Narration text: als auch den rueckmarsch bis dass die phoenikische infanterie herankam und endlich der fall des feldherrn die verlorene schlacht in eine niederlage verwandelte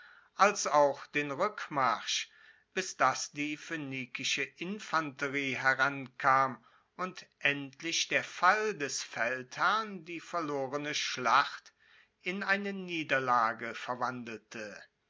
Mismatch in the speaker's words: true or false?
false